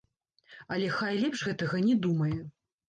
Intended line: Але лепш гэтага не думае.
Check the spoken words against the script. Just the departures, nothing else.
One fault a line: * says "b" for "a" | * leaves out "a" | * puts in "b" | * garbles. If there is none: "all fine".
* puts in "хай"